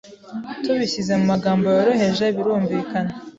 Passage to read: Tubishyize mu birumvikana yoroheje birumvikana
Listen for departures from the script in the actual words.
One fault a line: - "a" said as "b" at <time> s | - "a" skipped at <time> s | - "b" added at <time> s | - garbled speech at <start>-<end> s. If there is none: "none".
- "birumvikana" said as "magambo" at 1.3 s